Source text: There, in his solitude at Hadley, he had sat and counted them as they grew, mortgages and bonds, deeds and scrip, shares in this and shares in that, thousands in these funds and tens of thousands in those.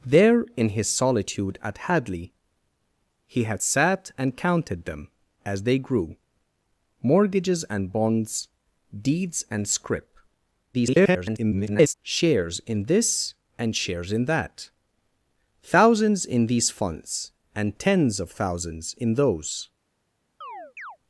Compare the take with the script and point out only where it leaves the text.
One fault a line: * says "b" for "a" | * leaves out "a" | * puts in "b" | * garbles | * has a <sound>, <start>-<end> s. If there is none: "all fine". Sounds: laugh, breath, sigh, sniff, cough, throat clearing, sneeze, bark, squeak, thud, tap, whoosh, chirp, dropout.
* garbles
* has a chirp, 20.4-21.0 s